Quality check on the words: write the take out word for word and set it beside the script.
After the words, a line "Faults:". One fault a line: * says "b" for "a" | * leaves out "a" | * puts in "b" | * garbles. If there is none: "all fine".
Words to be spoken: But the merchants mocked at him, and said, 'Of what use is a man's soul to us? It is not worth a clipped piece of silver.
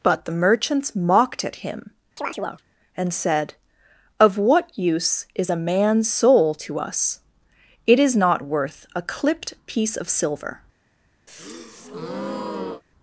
But the merchants mocked at him, and said, 'Of what use is a man's soul to us? It is not worth a clipped piece of silver.
Faults:
all fine